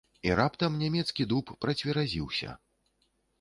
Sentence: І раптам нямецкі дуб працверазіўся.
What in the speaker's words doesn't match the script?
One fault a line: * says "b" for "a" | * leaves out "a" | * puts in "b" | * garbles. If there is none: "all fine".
all fine